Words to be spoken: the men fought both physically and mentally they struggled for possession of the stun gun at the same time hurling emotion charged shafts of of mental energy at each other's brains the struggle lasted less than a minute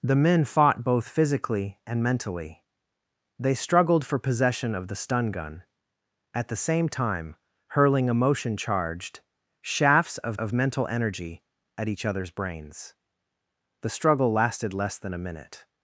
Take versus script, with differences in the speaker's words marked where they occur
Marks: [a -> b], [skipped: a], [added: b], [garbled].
the men fought both physically and mentally they struggled for possession of the stun gun at the same time hurling emotion charged shafts of of mental energy at each other's brains the struggle lasted less than a minute